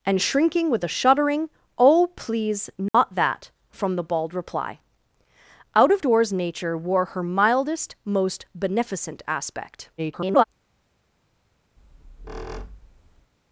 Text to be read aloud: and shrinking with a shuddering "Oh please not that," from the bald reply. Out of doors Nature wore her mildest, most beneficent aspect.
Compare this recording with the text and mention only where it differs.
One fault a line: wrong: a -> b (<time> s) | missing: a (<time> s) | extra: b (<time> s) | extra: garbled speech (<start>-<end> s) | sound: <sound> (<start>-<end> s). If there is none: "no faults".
sound: dropout (2.9-2.9 s)
extra: garbled speech (10.0-10.4 s)
sound: squeak (11.8-13.3 s)